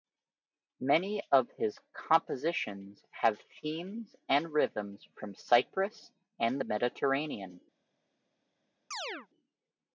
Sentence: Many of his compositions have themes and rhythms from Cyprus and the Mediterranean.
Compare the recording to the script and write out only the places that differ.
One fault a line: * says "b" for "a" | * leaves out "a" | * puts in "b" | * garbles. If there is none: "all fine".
all fine